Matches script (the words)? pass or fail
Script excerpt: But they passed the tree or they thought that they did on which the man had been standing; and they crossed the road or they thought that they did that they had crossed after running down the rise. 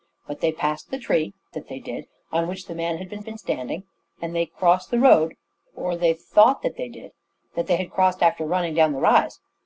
fail